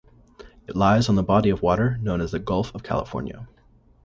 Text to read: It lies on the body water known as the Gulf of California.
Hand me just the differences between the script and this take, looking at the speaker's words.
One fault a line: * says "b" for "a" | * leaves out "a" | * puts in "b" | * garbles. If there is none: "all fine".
* puts in "of"